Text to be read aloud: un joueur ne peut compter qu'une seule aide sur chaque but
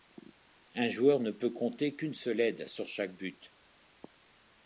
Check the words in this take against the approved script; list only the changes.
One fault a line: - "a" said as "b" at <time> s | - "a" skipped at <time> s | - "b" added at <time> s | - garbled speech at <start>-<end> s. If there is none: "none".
none